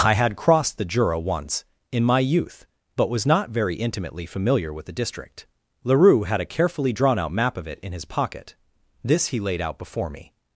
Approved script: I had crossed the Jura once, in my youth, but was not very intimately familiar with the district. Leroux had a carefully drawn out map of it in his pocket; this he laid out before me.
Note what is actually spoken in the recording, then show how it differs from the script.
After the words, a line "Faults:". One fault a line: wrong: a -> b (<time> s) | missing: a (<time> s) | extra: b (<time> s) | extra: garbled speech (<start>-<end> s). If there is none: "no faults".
I had crossed the Jura once, in my youth, but was not very intimately familiar with the district. Leroux had a carefully drawn out map of it in his pocket; this he laid out before me.
Faults:
no faults